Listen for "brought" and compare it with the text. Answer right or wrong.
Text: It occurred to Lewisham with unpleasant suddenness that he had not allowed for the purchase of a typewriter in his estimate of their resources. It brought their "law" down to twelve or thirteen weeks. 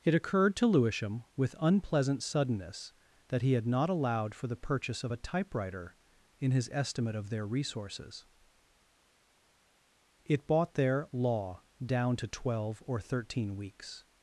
wrong